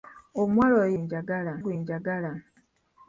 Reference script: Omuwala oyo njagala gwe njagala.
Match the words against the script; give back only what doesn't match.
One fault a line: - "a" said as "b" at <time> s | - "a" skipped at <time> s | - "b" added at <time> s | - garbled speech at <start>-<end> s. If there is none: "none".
none